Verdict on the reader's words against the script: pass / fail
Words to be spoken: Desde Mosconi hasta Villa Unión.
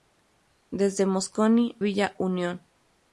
fail